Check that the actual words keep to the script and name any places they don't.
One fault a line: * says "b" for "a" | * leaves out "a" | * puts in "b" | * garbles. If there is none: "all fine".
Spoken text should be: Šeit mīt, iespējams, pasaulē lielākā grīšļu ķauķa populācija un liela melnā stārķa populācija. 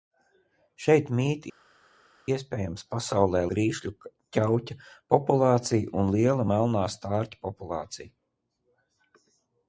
* leaves out "lielākā"